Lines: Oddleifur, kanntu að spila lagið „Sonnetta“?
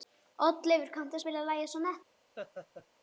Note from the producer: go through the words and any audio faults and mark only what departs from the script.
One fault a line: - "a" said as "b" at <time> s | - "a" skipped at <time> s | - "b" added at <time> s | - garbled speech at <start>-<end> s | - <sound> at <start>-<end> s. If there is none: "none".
- laugh at 2.4-2.9 s